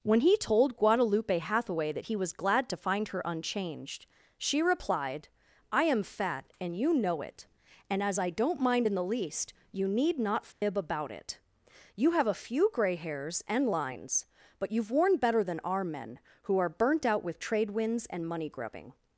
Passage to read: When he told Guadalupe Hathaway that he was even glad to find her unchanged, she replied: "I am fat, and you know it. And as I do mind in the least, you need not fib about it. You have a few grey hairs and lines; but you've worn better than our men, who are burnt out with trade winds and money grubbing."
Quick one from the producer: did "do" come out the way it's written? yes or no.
no